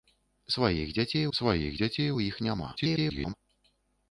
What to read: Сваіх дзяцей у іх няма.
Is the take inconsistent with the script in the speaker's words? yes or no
yes